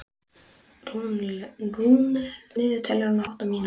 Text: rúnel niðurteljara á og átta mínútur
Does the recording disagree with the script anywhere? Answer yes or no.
no